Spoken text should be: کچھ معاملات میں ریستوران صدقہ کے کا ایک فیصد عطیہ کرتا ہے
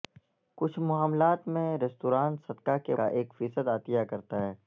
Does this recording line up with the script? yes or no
yes